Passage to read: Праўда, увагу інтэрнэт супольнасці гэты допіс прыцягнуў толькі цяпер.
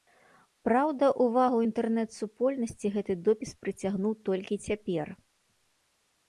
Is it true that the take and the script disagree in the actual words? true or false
false